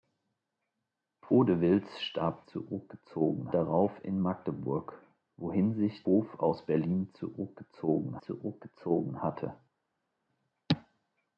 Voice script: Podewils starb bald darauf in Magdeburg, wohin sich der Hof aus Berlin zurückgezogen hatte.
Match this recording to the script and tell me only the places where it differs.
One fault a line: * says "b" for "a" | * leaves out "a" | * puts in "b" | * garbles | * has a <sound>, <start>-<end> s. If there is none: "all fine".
* says "zurückgezogen" for "bald"
* leaves out "der"
* puts in "zurückgezogen"